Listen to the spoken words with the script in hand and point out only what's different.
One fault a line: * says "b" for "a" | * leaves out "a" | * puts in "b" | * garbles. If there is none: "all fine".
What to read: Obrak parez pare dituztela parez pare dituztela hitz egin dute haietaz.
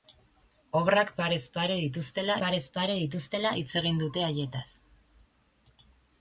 all fine